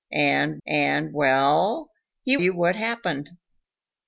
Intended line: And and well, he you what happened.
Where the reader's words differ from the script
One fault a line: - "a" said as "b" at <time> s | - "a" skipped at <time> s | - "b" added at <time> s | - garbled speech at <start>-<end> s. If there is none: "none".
none